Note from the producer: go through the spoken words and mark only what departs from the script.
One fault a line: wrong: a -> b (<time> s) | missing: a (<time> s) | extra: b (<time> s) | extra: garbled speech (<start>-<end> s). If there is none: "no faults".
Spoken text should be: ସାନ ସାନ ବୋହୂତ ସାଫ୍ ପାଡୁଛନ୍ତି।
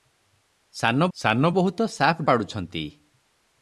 no faults